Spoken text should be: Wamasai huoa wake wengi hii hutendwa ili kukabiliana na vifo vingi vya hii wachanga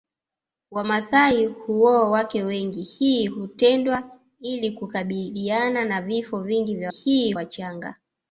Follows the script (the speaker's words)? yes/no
yes